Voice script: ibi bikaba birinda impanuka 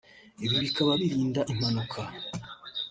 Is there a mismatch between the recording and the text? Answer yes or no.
no